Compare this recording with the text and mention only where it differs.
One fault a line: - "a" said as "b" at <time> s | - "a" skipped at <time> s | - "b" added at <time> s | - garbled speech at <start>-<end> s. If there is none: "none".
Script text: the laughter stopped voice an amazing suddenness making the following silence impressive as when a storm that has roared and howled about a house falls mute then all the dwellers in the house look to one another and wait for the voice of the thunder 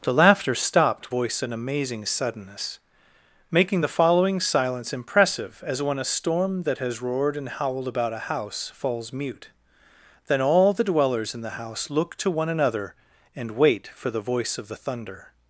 none